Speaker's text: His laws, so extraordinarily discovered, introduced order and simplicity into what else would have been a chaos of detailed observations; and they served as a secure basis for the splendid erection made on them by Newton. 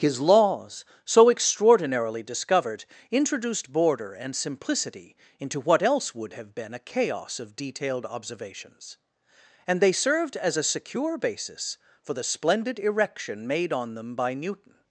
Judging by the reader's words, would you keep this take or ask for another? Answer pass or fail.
fail